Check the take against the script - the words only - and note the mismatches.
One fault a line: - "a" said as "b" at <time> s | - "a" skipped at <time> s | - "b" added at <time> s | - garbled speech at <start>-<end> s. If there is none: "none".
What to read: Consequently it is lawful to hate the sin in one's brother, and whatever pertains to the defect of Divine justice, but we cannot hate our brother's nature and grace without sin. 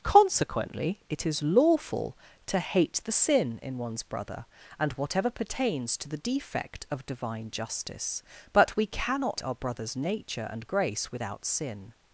- "hate" skipped at 9.4 s